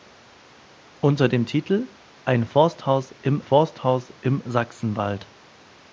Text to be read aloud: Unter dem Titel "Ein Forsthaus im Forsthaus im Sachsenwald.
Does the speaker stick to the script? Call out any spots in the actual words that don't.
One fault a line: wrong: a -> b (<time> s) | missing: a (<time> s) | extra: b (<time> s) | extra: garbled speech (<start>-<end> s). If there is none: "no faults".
no faults